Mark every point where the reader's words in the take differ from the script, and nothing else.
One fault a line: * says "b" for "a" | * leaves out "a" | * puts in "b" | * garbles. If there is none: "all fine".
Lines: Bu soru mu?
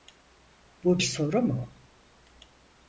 all fine